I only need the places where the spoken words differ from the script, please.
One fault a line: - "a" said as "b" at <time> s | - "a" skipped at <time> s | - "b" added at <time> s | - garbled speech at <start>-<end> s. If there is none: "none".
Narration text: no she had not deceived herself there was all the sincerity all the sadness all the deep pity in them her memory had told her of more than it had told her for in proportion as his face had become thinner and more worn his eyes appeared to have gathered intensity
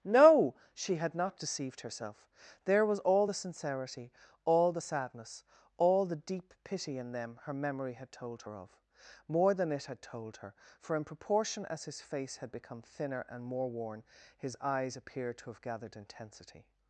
none